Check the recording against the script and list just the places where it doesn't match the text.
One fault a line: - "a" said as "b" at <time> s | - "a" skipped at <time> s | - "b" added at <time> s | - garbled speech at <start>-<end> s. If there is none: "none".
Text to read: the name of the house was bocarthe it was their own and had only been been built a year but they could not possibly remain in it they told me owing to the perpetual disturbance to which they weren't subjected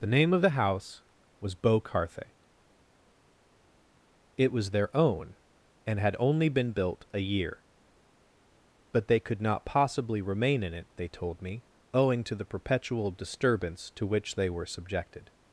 - "been" skipped at 6.7 s
- "weren't" said as "were" at 14.5 s